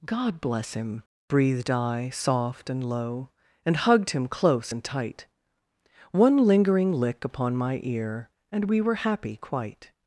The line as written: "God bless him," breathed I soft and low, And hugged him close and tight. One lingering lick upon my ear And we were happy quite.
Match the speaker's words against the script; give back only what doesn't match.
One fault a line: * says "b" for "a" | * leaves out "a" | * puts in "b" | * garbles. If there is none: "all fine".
all fine